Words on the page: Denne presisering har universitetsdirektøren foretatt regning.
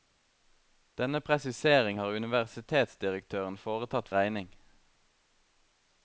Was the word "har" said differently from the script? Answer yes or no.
no